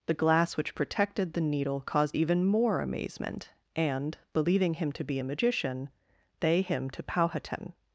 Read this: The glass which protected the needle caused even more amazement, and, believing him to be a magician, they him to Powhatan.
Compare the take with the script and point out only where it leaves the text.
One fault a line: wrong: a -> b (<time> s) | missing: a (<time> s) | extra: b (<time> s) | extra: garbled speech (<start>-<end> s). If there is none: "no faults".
no faults